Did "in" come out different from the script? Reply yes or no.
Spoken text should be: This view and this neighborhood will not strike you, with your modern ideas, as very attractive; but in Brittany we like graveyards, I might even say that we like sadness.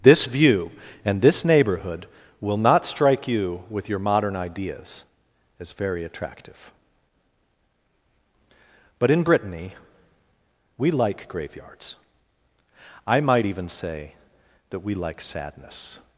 no